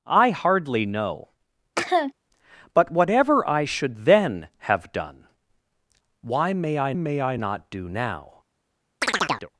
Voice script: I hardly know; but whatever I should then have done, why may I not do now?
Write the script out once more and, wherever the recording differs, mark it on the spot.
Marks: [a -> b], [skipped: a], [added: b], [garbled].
I hardly know; but whatever I should then have done, why may I [added: may I] not do now?